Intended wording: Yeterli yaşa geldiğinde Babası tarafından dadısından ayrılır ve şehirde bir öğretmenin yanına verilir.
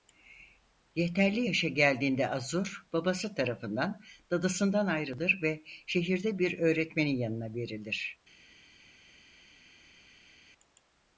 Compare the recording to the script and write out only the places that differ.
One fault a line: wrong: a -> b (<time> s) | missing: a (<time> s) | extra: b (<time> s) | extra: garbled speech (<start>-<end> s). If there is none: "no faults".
extra: Azur (2.3 s)